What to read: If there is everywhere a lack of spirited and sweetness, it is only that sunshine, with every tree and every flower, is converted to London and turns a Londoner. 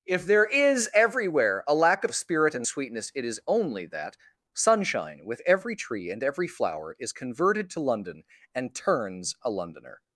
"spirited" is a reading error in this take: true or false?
true